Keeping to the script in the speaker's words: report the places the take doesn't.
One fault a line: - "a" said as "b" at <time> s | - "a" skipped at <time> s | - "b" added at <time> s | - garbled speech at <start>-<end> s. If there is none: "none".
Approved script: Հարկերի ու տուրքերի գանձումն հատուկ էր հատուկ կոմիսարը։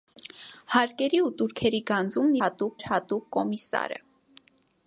none